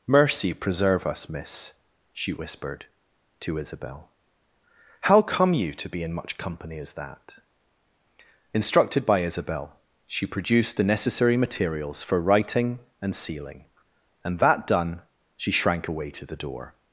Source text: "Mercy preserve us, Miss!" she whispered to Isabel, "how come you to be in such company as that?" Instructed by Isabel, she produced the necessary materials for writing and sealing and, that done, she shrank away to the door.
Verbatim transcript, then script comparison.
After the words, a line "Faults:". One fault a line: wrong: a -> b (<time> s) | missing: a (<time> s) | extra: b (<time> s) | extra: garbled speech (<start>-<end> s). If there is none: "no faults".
"Mercy preserve us, Miss!" she whispered to Isabel, "how come you to be in much company as that?" Instructed by Isabel, she produced the necessary materials for writing and sealing and, that done, she shrank away to the door.
Faults:
wrong: such -> much (6.1 s)